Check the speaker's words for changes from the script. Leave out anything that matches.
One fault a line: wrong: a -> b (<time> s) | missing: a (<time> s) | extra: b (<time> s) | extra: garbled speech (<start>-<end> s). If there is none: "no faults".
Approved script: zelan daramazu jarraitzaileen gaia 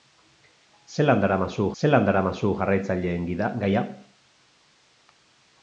extra: zelan daramazu (1.8 s)